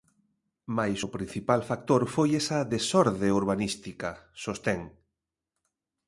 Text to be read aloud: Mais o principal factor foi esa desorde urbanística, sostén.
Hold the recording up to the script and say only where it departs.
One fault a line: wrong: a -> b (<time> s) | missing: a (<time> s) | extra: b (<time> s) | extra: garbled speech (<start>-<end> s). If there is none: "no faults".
no faults